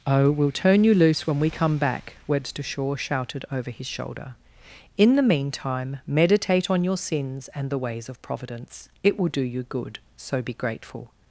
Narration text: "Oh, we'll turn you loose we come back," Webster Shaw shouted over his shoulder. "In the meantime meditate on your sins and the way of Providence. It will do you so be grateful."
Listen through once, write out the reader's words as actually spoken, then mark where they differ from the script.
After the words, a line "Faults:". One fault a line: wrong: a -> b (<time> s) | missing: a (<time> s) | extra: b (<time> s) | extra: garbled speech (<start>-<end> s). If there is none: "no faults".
"Oh, we'll turn you loose when we come back," Webster Shaw shouted over his shoulder. "In the meantime meditate on your sins and the ways of Providence. It will do you good, so be grateful."
Faults:
extra: when (1.3 s)
wrong: way -> ways (7.8 s)
extra: good (9.6 s)